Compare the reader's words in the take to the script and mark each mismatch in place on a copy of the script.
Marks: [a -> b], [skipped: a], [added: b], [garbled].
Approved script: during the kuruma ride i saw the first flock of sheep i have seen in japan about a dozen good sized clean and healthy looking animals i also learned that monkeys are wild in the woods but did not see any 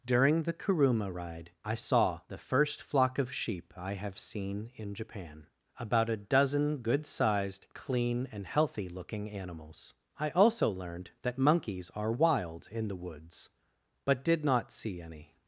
during the kuruma ride i saw the first flock of sheep i have seen in japan about a dozen good sized clean and healthy looking animals i also learned that monkeys are wild in the woods but did not see any